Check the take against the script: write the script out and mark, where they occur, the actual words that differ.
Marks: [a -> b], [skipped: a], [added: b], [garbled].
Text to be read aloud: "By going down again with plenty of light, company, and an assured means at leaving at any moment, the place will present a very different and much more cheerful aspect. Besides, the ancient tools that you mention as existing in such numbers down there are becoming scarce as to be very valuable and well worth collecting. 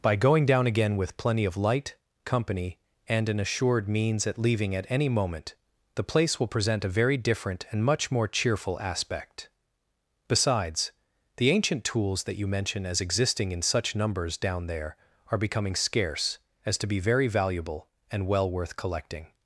"By going down again with plenty of light, company, and an assured means at leaving at any moment, the place will present a very different and much more cheerful aspect. Besides, the ancient tools that you mention as existing in such numbers down there are becoming scarce as to be very valuable and well worth collecting.